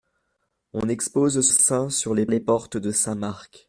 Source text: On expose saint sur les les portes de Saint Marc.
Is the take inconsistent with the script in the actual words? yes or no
no